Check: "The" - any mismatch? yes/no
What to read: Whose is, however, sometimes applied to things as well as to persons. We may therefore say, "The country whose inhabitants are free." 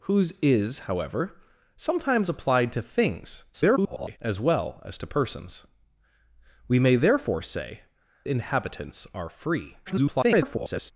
yes